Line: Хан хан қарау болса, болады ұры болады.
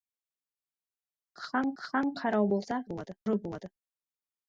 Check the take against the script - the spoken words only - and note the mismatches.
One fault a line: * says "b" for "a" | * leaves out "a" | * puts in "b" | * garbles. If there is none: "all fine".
all fine